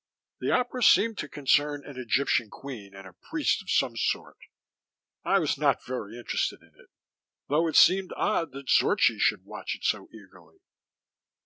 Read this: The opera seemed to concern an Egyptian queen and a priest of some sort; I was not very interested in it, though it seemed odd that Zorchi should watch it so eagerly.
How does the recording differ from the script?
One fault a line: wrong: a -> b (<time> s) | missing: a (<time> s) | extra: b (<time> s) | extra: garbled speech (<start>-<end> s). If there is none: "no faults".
no faults